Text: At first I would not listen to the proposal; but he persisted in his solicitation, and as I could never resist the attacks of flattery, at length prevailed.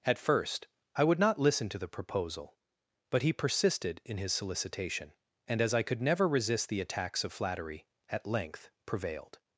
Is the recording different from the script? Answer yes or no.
no